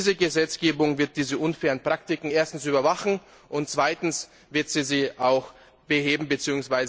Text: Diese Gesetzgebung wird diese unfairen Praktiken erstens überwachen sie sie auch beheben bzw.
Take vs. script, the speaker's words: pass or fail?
fail